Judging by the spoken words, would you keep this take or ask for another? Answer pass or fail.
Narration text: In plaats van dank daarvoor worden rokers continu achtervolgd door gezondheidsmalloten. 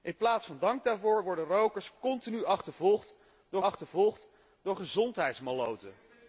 fail